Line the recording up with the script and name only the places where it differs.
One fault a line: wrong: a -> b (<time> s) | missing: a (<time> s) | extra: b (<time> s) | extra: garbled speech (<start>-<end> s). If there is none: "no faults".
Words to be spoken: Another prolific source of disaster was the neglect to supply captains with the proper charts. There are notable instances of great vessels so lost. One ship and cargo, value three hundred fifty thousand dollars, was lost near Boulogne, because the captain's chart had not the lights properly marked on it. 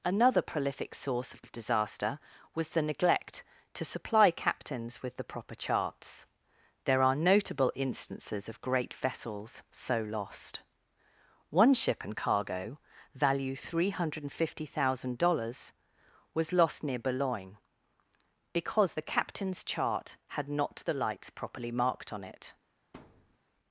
extra: of (1.4 s)